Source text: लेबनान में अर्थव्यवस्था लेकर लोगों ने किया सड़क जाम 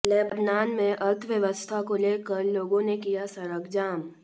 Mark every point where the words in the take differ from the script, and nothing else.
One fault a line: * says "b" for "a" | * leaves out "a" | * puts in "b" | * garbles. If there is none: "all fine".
* puts in "को"